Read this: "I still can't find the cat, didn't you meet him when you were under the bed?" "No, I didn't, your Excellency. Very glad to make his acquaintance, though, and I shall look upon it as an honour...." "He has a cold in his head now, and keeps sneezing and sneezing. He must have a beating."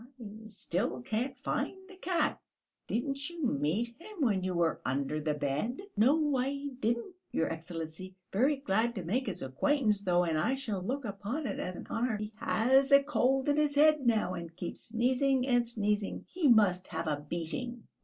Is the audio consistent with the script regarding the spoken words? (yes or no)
yes